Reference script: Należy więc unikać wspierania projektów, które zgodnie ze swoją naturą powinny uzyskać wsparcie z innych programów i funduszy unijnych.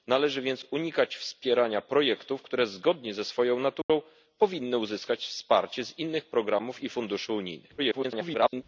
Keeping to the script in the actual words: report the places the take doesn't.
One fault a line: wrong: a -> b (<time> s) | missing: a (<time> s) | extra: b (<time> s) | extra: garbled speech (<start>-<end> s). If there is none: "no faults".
extra: garbled speech (7.8-8.6 s)